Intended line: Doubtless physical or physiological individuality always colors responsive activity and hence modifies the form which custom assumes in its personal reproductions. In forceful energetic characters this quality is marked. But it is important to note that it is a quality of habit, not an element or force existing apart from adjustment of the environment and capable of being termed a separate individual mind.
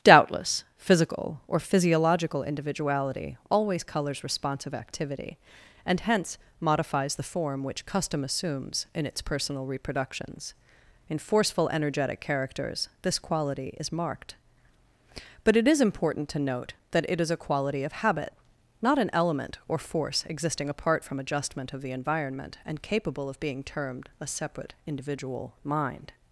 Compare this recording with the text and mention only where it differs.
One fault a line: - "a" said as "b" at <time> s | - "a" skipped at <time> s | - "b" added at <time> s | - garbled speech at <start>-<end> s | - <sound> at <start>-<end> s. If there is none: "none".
none